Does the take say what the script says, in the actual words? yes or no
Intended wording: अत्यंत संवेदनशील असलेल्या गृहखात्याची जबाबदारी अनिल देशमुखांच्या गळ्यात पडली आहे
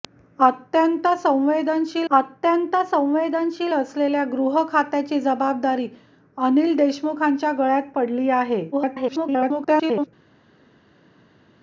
no